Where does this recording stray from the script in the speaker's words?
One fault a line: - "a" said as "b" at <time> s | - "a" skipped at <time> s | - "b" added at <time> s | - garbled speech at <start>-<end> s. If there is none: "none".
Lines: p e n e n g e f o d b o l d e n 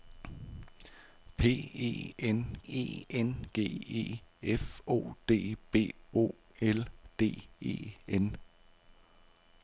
none